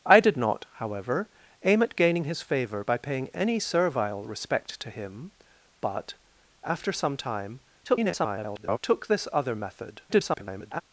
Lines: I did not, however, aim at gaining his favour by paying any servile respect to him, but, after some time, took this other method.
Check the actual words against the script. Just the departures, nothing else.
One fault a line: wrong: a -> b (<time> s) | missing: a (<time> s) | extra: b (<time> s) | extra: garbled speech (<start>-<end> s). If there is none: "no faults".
extra: garbled speech (7.8-8.8 s)
extra: garbled speech (10.1-10.8 s)